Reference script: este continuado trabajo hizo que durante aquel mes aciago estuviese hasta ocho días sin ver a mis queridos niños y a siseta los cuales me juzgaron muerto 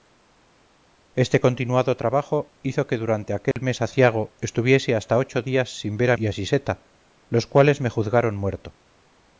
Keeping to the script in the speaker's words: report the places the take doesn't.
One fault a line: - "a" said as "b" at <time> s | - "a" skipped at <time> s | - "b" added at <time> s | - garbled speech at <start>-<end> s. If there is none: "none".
- "mis queridos niños" skipped at 6.2 s